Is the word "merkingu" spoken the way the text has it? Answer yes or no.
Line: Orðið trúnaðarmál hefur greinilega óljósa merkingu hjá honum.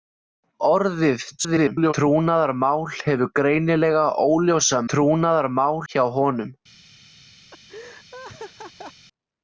no